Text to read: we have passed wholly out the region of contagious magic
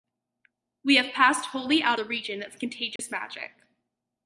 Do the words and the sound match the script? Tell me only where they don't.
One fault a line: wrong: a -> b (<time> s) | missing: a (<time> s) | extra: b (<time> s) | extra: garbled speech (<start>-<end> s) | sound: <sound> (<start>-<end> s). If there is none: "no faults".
sound: dropout (3.0-3.0 s)